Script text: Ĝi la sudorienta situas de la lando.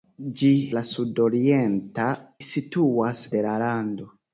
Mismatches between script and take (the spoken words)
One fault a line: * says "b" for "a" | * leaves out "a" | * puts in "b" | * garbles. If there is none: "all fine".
all fine